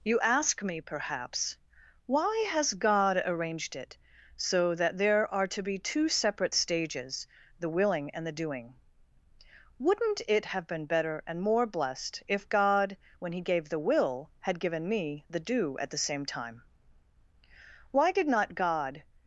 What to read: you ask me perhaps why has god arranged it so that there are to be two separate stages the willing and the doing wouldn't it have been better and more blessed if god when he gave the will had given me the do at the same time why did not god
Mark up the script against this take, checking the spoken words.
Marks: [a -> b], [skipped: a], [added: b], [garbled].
you ask me perhaps why has god arranged it so that there are to be two separate stages the willing and the doing wouldn't it have been better and more blessed if god when he gave the will had given me the do at the same time why did not god